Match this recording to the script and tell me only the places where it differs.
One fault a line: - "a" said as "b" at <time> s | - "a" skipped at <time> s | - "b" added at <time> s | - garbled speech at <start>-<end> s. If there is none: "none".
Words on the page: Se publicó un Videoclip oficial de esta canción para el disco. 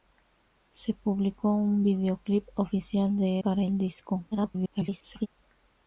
- "esta canción" skipped at 3.4 s
- garbled speech at 4.3-5.3 s